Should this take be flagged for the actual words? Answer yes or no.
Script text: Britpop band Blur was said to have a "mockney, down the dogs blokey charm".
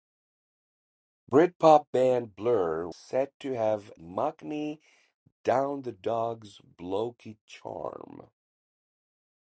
yes